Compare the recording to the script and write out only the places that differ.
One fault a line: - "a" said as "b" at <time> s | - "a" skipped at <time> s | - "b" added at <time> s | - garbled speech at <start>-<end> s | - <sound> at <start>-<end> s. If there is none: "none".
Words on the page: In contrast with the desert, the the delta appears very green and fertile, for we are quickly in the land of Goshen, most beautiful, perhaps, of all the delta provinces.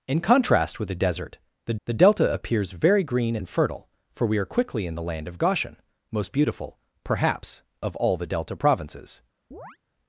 - chirp at 9.5-9.8 s